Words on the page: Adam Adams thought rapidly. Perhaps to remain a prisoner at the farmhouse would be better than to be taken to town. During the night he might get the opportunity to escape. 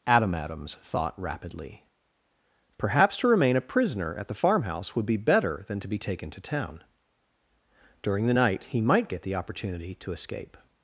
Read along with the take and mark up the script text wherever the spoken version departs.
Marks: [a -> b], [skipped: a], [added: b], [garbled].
Adam Adams thought rapidly. Perhaps to remain a prisoner at the farmhouse would be better than to be taken to town. During the night he might get the opportunity to escape.